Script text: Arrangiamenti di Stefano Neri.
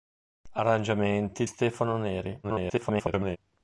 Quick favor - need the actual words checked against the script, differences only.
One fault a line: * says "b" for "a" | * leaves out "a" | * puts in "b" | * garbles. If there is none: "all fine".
* leaves out "di"
* garbles